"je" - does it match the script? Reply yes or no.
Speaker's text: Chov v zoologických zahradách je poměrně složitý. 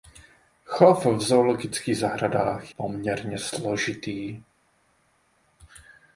no